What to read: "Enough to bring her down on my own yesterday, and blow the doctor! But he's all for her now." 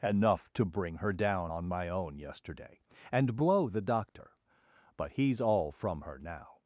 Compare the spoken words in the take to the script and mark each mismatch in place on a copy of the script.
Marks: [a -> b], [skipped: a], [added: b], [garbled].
"Enough to bring her down on my own yesterday, and blow the doctor! But he's all [for -> from] her now."